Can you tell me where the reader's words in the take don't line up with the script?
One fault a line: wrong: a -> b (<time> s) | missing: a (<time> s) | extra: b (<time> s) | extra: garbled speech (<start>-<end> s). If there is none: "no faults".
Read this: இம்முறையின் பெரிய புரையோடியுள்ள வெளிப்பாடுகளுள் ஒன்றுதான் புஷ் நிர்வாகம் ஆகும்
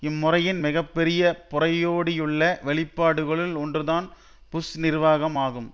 extra: மிக (0.6 s)